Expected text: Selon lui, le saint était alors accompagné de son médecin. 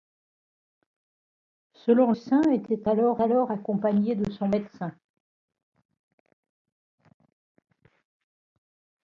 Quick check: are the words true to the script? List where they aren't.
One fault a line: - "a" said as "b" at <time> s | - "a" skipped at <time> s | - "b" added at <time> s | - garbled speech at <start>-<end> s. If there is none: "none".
- "lui le" skipped at 2.1 s
- "alors" added at 3.2 s